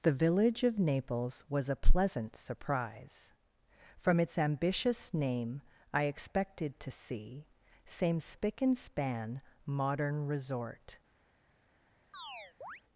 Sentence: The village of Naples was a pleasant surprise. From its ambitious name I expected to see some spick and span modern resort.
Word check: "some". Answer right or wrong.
wrong